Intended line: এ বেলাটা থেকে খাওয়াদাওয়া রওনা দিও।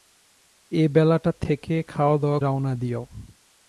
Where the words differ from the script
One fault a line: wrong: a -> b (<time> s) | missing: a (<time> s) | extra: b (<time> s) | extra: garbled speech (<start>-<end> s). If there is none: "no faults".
no faults